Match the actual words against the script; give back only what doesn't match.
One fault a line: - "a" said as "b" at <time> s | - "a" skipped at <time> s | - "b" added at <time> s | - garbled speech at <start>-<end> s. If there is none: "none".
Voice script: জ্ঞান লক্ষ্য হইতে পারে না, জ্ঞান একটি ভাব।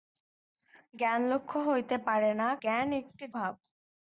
none